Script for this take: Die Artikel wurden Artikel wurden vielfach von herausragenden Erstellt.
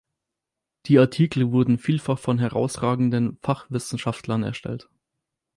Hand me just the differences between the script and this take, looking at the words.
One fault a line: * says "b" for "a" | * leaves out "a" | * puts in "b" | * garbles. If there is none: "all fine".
* leaves out "Artikel wurden"
* puts in "Fachwissenschaftlern"